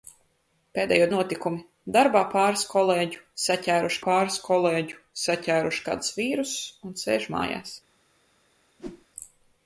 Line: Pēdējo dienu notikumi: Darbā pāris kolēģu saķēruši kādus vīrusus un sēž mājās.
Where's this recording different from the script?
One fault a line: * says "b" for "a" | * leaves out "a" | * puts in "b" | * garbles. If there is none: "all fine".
* leaves out "dienu"
* puts in "pāris kolēģu saķēruši"